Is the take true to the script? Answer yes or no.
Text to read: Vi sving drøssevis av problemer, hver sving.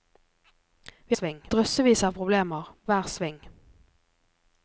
yes